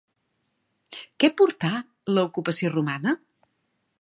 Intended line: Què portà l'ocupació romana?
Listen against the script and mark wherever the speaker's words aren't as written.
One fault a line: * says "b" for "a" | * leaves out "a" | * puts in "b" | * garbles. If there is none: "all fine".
all fine